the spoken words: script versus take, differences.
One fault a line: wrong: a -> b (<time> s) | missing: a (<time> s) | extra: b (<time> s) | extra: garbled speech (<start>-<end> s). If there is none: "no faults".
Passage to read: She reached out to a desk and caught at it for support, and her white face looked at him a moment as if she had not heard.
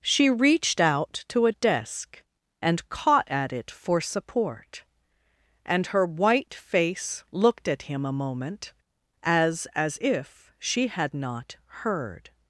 extra: as (9.7 s)